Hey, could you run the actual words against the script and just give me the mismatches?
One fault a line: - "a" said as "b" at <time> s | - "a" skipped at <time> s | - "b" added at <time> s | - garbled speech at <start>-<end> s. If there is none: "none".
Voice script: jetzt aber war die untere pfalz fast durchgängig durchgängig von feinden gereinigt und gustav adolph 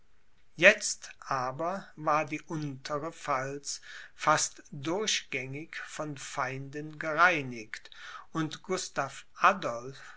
- "durchgängig" skipped at 5.7 s